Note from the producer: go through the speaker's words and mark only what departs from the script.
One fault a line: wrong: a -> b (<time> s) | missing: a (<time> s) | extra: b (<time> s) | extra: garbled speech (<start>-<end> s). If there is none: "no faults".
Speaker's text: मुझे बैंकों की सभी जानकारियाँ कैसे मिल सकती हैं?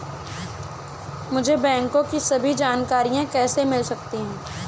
no faults